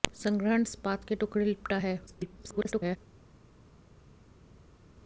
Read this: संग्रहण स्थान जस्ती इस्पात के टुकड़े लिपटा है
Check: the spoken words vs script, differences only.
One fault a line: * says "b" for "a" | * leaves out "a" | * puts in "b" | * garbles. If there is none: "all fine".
* leaves out "स्थान जस्ती"
* garbles